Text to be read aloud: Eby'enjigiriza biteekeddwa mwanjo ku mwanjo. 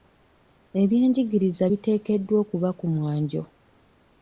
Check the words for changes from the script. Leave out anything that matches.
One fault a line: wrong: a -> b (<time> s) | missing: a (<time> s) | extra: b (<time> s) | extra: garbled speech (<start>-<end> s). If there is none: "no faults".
wrong: mwanjo -> okuba (2.4 s)